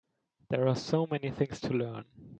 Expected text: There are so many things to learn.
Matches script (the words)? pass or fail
pass